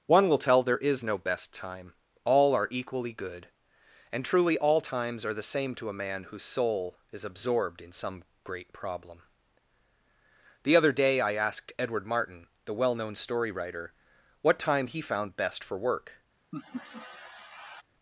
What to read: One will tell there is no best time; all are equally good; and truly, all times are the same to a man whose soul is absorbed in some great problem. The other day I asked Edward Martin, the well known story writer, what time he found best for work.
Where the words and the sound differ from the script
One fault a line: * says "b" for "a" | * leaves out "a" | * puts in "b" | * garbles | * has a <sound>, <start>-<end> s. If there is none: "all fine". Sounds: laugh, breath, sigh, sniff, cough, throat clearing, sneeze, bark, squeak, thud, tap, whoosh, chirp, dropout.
* has a laugh, 16.5-17.8 s